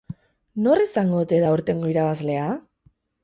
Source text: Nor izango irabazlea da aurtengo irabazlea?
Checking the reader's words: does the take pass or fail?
fail